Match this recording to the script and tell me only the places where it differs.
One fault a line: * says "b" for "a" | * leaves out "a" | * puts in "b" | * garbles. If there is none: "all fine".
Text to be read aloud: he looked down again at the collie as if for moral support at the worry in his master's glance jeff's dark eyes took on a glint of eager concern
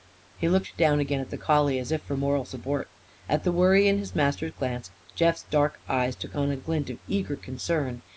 all fine